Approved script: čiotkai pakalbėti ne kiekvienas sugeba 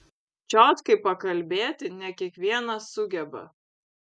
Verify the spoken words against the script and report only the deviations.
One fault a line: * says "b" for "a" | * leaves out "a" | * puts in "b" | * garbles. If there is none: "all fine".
all fine